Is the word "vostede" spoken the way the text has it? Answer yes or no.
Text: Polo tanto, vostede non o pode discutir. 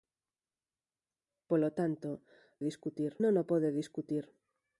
no